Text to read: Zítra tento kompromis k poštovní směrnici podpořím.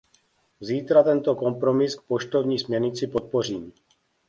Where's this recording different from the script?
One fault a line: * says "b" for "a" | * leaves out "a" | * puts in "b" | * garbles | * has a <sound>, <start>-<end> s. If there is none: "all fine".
all fine